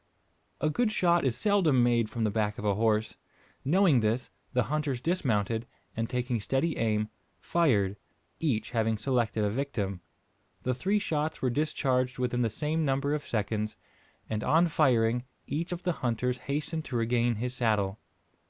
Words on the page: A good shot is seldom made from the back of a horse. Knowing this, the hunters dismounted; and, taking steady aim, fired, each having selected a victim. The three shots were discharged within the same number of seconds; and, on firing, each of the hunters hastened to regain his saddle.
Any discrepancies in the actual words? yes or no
no